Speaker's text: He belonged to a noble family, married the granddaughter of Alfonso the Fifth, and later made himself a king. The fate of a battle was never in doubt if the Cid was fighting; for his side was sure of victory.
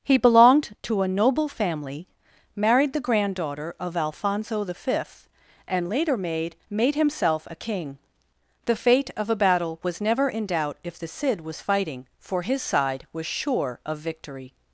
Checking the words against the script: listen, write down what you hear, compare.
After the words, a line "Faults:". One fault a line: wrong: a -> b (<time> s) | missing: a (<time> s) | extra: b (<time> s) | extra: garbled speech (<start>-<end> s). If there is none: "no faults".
He belonged to a noble family, married the granddaughter of Alfonso the Fifth, and later made made himself a king. The fate of a battle was never in doubt if the Cid was fighting; for his side was sure of victory.
Faults:
extra: made (6.7 s)